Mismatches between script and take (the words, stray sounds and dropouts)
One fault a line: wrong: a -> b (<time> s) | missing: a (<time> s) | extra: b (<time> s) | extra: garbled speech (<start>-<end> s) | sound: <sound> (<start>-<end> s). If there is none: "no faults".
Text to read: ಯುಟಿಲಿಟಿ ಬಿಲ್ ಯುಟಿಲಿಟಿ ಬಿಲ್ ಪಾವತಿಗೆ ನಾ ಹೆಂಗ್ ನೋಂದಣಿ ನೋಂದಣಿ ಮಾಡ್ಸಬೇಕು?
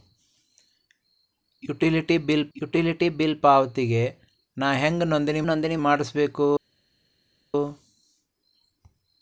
no faults